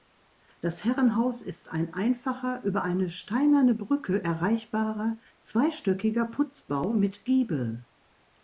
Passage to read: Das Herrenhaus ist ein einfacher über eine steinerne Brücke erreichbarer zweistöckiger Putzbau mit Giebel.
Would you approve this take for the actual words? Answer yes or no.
yes